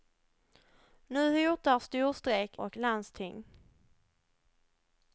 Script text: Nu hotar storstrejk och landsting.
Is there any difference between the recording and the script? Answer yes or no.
no